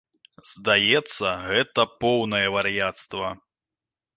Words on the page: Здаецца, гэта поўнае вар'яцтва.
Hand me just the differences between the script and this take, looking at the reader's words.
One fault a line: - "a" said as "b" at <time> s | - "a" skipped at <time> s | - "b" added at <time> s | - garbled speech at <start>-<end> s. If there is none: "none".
none